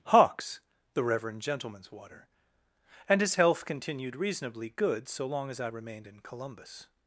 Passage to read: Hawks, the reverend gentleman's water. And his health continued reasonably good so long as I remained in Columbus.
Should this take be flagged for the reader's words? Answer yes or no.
no